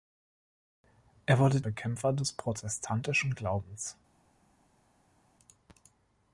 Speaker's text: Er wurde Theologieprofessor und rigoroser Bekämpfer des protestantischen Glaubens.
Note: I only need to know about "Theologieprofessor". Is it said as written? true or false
false